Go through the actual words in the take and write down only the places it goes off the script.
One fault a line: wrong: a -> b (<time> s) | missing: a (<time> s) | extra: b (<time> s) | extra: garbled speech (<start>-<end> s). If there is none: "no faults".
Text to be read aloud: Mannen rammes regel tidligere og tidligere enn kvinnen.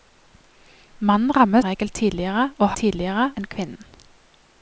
no faults